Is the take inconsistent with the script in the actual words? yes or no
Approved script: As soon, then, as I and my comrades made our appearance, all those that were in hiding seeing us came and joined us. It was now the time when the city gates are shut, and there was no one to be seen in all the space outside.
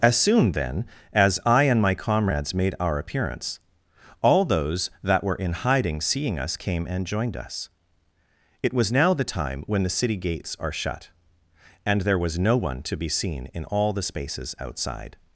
yes